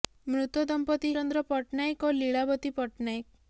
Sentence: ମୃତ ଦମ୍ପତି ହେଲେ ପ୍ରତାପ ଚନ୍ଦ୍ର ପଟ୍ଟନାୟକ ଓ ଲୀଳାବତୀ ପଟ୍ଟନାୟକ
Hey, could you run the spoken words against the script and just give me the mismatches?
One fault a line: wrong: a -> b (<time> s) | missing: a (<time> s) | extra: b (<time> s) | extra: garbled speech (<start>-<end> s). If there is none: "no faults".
missing: ହେଲେ ପ୍ରତାପ (1.1 s)